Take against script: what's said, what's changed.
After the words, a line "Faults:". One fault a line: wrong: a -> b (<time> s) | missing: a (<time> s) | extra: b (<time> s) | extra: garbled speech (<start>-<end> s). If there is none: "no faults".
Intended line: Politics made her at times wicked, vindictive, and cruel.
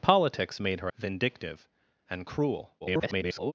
Politics made her vindictive, and cruel. [garbled]
Faults:
missing: at times wicked (0.9 s)
extra: garbled speech (2.8-3.5 s)